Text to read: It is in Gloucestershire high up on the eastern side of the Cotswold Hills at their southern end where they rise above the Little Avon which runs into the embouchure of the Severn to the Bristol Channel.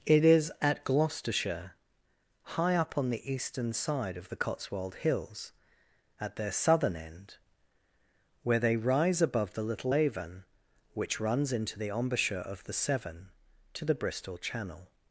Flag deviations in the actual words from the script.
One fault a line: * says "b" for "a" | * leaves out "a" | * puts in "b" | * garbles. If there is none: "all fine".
* says "at" for "in"